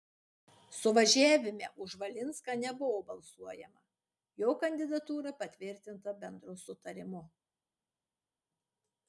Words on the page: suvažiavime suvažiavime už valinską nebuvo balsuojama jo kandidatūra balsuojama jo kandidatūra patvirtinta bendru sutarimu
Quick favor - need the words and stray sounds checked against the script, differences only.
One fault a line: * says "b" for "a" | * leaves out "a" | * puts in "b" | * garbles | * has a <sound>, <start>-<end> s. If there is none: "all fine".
* leaves out "suvažiavime"
* leaves out "balsuojama jo kandidatūra"